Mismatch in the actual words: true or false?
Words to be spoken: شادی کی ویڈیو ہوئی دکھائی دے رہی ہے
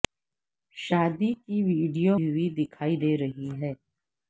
false